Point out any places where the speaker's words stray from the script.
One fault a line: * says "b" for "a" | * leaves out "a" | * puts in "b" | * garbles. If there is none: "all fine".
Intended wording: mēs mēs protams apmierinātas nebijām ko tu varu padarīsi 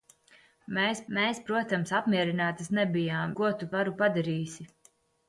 all fine